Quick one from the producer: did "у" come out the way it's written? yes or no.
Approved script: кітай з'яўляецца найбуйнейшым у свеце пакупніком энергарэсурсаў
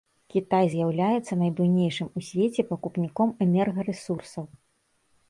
yes